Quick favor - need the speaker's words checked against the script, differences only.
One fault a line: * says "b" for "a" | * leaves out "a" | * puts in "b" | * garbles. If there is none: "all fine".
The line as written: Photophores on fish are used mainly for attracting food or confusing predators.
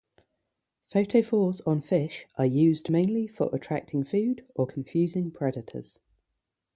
all fine